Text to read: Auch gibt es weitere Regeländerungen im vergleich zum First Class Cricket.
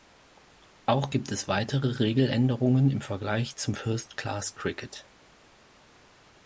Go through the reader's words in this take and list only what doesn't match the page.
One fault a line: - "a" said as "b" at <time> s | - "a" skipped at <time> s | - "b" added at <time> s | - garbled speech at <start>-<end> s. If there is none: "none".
none